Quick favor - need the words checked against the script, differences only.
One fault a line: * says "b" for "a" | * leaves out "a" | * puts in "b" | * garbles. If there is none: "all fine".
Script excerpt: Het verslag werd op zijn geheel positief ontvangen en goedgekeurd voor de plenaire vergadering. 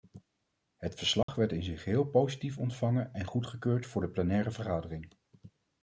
* says "in" for "op"